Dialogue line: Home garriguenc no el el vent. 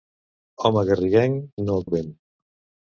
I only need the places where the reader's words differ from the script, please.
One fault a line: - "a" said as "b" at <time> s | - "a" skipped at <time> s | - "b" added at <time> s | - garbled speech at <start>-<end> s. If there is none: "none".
none